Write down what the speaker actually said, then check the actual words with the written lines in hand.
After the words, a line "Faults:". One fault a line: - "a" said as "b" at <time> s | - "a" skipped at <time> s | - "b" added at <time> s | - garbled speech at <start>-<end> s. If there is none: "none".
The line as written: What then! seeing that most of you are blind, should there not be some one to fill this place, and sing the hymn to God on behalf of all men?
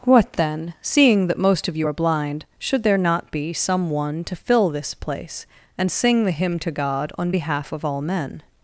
What then! seeing that most of you are blind, should there not be some one to fill this place, and sing the hymn to God on behalf of all men?
Faults:
none